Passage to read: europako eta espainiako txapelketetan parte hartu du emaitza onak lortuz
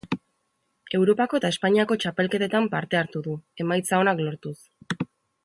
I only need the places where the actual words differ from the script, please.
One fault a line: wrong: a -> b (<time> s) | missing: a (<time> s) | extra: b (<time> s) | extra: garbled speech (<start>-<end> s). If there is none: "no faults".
no faults